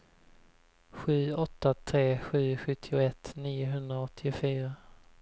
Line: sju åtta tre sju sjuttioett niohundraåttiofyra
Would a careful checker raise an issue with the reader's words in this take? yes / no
no